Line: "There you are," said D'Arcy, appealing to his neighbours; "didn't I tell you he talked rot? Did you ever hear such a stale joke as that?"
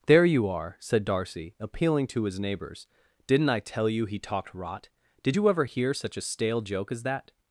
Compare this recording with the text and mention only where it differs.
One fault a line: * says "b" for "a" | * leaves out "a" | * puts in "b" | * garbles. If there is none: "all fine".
all fine